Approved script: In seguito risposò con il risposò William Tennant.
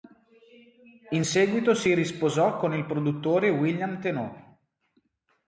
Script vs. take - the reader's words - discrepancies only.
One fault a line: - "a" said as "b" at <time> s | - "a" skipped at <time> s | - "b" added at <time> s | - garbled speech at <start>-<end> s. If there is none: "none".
- "si" added at 1.7 s
- "risposò" said as "produttore" at 2.8 s